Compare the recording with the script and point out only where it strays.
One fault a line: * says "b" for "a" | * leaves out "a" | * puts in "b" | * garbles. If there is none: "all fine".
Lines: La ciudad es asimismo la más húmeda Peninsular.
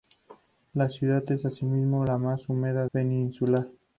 all fine